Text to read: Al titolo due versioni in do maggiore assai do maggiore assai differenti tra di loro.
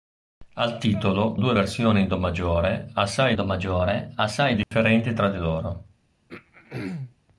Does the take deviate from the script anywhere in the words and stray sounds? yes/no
yes